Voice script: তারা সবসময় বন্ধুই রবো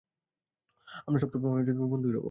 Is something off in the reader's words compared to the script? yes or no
yes